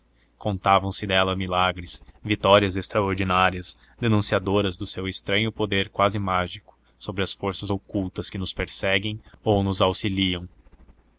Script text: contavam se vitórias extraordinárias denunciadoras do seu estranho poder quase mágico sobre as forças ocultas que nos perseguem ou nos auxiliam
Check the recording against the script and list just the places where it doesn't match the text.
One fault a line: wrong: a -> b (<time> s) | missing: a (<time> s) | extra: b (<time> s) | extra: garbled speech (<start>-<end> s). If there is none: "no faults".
extra: dela milagres (1.1 s)